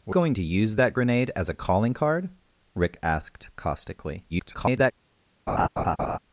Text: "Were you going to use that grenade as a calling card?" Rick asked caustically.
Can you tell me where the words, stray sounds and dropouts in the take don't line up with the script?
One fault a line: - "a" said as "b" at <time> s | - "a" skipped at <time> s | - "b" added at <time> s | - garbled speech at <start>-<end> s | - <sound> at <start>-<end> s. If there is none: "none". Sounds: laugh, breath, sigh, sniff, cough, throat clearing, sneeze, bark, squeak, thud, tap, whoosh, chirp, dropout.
- "you" skipped at 0.1 s
- garbled speech at 4.3-4.9 s
- laugh at 5.5-6.2 s